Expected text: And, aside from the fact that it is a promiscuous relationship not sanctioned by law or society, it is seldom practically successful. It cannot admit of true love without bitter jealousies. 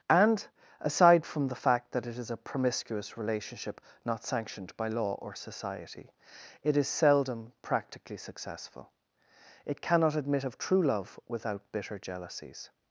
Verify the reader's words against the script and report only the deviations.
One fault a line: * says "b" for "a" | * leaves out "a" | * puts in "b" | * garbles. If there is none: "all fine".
all fine